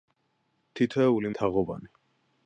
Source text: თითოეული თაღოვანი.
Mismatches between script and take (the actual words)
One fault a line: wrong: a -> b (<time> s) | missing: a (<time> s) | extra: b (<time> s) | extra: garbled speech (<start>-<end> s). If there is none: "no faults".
no faults